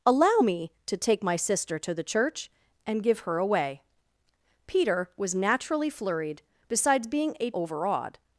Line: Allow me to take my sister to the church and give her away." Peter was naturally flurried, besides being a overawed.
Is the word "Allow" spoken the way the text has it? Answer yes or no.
yes